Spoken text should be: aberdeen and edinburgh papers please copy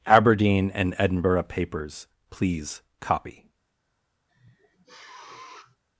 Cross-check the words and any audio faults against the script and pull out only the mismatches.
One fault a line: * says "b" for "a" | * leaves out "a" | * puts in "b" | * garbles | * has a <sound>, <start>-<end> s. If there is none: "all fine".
* has a sniff, 4.3-5.8 s